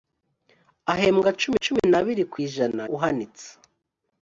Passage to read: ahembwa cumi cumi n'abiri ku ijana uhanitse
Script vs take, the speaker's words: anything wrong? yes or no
no